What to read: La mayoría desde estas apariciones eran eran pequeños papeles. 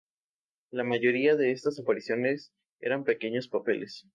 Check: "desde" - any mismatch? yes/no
yes